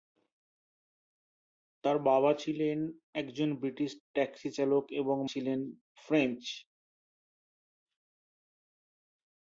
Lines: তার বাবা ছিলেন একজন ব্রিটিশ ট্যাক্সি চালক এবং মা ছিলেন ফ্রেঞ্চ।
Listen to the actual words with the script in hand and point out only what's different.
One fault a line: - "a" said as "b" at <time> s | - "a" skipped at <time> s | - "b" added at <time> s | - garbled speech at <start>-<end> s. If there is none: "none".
- "মা" skipped at 5.2 s